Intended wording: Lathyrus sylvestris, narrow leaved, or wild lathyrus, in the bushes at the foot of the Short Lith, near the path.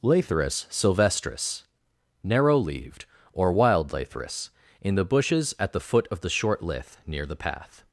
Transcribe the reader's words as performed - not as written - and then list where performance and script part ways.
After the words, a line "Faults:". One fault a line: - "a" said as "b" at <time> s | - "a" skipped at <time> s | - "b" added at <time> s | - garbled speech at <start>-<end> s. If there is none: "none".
Lathyrus sylvestris, narrow leaved, or wild lathyrus, in the bushes at the foot of the Short Lith, near the path.
Faults:
none